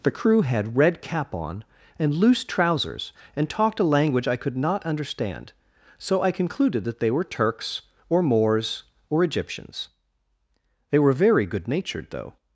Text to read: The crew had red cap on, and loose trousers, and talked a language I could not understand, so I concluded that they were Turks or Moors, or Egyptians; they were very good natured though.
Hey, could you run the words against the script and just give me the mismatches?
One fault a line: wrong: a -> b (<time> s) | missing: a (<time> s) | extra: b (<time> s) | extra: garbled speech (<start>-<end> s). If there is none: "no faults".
no faults